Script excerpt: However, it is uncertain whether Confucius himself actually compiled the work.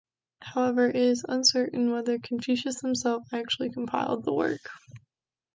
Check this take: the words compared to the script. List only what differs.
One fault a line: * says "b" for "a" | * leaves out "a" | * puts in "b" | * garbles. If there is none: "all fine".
all fine